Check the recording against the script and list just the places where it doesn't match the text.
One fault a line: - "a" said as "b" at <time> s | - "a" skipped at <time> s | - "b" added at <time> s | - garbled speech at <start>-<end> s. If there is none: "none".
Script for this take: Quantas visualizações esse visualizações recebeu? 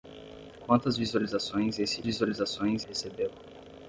none